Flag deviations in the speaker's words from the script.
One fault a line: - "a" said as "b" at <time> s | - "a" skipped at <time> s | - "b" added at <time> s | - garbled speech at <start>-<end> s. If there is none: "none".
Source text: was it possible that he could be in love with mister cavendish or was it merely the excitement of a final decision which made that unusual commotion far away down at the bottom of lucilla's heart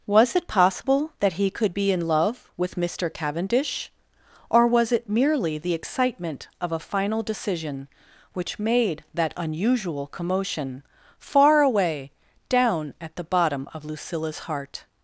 none